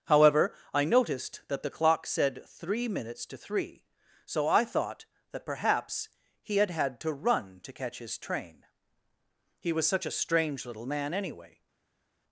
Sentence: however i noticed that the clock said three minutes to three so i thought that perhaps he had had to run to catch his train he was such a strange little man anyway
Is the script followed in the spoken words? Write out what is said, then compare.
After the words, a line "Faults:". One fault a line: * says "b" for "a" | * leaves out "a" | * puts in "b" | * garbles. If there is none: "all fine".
however i noticed that the clock said three minutes to three so i thought that perhaps he had had to run to catch his train he was such a strange little man anyway
Faults:
all fine